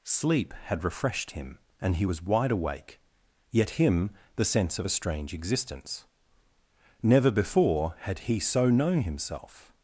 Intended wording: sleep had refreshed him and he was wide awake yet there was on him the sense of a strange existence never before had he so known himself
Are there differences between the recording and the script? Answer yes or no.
yes